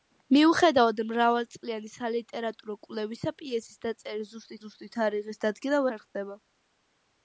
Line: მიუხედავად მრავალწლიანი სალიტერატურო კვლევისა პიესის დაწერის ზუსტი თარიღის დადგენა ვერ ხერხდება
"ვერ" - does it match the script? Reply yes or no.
no